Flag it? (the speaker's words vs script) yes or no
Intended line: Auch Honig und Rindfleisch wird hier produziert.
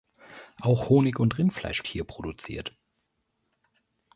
yes